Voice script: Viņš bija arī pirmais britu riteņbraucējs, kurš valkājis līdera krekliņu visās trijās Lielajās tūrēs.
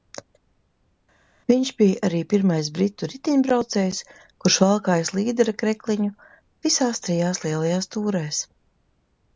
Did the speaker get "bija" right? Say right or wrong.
right